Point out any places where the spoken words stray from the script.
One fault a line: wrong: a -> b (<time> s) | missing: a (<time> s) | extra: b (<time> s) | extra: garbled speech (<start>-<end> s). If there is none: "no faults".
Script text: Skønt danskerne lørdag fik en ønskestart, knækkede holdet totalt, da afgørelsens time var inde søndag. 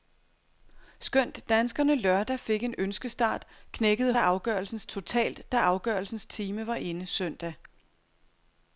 wrong: holdet -> afgørelsens (4.2 s)